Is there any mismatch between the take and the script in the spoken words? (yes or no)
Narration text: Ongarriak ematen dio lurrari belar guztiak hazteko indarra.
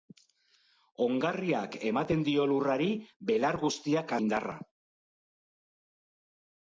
yes